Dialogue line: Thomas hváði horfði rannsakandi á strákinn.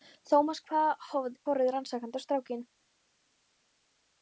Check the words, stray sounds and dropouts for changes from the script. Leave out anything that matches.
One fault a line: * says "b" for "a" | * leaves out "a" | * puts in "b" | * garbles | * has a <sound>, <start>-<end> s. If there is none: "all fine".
all fine